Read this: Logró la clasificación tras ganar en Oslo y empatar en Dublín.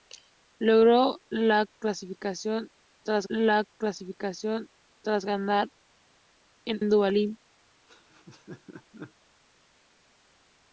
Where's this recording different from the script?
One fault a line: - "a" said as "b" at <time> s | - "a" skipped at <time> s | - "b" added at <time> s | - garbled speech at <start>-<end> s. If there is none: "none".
- "ganar en Oslo y empatar" said as "la clasificación tras ganar en" at 3.3 s